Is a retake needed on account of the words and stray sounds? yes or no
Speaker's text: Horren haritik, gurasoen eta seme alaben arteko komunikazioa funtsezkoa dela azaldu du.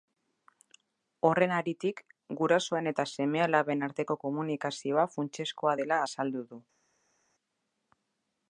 no